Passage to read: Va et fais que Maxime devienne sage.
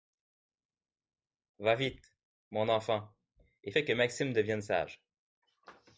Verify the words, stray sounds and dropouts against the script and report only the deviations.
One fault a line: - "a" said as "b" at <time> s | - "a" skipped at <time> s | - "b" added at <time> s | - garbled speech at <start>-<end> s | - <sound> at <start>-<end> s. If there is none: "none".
- "vite mon enfant" added at 1.7 s